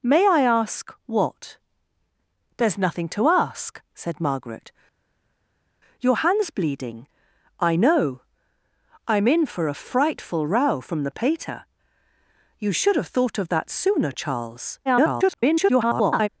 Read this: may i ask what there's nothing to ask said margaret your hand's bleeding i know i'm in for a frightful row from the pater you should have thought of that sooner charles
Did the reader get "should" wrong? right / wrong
right